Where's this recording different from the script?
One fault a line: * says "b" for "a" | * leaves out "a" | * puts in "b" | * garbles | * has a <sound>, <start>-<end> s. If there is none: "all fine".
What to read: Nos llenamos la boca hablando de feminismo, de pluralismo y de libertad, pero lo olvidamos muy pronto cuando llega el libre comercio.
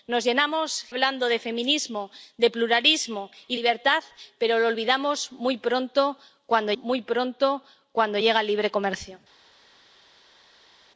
* leaves out "la boca"
* leaves out "de"
* puts in "muy pronto cuando"